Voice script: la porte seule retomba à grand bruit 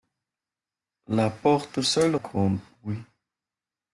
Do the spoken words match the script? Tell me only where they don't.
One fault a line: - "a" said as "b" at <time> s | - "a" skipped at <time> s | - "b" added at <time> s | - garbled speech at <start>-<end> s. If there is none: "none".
- "retomba" skipped at 2.1 s